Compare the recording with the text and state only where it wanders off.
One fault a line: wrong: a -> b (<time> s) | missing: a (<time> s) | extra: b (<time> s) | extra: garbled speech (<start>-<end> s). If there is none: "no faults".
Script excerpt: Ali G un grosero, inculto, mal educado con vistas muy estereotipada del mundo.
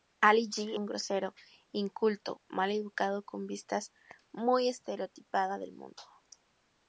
no faults